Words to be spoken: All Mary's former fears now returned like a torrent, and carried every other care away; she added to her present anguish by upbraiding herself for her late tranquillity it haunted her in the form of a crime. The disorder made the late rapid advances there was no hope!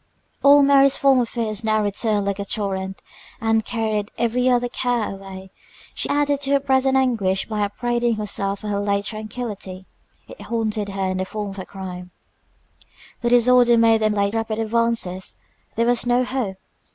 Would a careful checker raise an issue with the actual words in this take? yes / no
no